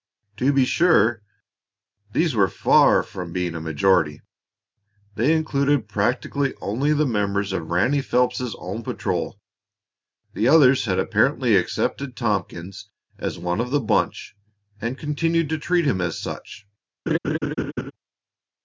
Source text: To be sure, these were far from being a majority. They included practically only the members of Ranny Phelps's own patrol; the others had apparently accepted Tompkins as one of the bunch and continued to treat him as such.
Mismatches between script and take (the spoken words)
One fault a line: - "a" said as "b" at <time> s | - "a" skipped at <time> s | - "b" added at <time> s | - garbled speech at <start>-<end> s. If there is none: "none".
none